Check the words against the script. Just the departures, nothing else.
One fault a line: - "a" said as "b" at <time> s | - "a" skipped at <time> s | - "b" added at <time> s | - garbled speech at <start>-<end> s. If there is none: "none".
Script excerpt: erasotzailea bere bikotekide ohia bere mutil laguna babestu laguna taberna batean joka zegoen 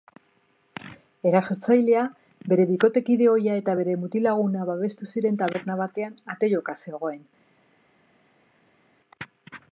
- "eta" added at 3.6 s
- "laguna" said as "ziren" at 5.1 s
- "ate" added at 6.4 s